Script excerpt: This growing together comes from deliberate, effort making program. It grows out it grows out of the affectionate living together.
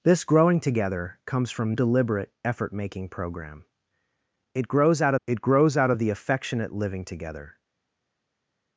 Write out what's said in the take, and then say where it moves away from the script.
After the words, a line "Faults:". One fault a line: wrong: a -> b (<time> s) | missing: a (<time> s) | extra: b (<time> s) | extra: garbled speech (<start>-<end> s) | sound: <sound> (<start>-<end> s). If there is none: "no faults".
This growing together comes from deliberate, effort making program. It grows out it grows out of the affectionate living together.
Faults:
no faults